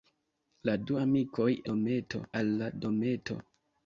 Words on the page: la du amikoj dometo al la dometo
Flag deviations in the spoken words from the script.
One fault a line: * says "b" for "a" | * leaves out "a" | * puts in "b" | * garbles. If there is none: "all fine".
all fine